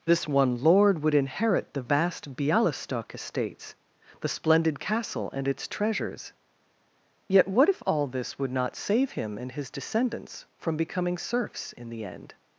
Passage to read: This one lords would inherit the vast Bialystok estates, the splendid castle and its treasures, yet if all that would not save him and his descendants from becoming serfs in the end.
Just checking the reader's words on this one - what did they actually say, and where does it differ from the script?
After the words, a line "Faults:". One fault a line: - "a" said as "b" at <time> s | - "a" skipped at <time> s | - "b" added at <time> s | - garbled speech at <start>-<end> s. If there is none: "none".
This one lord would inherit the vast Bialystok estates, the splendid castle and its treasures, yet what if all this would not save him and his descendants from becoming serfs in the end.
Faults:
- "lords" said as "lord" at 0.6 s
- "what" added at 7.5 s
- "that" said as "this" at 8.1 s